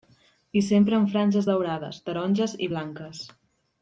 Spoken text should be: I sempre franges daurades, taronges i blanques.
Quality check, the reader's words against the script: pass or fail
fail